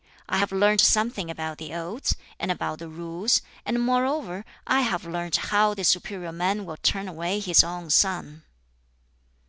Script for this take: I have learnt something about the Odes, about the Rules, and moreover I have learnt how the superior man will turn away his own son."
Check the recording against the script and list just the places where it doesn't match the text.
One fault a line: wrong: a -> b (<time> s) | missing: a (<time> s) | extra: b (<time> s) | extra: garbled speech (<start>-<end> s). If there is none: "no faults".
extra: and (2.4 s)